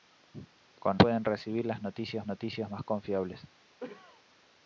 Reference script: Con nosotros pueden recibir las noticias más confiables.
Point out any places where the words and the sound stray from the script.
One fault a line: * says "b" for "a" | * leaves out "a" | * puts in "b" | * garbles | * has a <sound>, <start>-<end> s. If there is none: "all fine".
* leaves out "nosotros"
* puts in "noticias"
* has a cough, 3.8-4.2 s